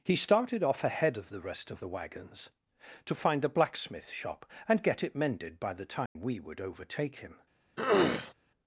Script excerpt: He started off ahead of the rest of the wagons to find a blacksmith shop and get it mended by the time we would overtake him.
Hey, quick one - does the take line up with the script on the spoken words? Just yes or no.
yes